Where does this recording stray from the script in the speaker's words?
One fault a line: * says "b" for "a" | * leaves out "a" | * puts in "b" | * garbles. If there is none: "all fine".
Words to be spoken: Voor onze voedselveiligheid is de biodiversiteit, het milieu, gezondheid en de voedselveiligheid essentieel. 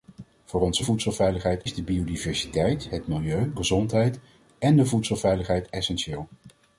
all fine